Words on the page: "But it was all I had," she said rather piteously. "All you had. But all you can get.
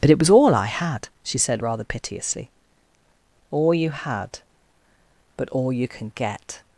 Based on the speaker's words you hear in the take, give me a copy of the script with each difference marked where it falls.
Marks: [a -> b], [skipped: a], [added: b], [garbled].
"But it was all I had," she said rather piteously. "All you had. But all you can get.